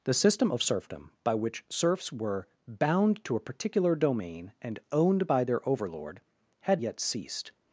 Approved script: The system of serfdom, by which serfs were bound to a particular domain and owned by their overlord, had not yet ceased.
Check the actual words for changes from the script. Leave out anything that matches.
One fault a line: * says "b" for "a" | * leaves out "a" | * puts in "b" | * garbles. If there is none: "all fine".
* leaves out "not"